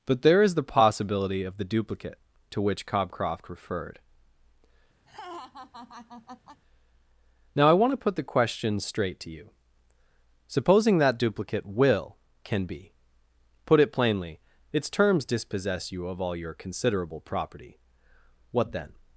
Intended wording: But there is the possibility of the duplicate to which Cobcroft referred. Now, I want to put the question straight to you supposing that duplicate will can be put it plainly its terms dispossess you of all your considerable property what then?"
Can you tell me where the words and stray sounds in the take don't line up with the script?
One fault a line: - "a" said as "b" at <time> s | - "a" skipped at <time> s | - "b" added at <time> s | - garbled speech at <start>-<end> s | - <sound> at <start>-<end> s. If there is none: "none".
- laugh at 5.1-6.6 s